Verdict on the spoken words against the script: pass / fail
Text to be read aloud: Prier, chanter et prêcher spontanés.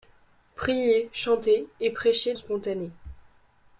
pass